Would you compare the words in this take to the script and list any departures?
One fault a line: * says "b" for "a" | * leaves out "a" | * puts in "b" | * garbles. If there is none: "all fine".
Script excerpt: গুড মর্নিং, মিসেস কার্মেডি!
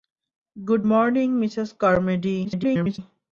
* garbles